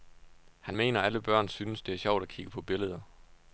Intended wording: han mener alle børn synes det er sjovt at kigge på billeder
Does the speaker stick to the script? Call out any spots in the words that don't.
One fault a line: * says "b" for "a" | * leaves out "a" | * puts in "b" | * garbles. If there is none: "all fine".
all fine